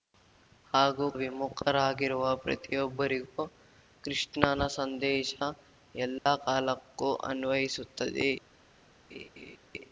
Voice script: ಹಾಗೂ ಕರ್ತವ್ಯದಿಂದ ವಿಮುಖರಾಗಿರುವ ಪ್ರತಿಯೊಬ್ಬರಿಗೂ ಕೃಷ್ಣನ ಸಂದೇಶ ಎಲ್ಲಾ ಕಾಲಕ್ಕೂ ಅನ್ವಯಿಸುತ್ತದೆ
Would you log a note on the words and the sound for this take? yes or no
yes